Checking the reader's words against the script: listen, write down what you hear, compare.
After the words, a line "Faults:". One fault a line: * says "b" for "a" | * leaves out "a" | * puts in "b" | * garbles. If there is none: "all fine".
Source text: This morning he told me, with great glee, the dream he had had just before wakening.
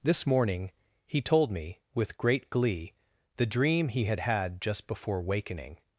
This morning he told me, with great glee, the dream he had had just before wakening.
Faults:
all fine